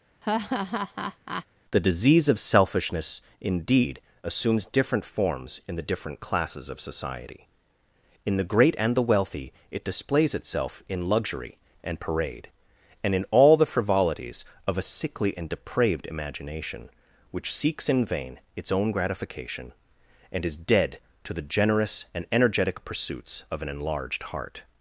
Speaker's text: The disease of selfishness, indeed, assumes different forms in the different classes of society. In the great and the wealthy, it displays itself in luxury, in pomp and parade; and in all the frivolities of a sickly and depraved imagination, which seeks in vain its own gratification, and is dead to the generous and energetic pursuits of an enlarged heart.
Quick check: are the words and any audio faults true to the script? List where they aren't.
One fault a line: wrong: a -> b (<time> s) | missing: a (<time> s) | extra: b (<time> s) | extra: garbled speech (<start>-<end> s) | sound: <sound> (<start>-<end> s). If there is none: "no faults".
sound: laugh (0.2-1.5 s)
missing: in pomp (11.6 s)